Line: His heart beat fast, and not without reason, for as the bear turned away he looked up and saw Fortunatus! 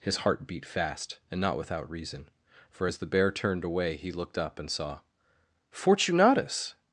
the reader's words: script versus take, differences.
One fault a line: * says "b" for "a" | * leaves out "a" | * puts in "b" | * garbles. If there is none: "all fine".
all fine